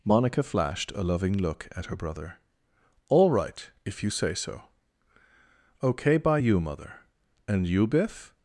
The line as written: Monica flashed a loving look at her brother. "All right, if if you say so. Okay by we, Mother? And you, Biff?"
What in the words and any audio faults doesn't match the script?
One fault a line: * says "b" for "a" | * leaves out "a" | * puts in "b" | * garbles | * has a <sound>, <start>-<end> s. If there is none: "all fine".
* leaves out "if"
* says "you" for "we"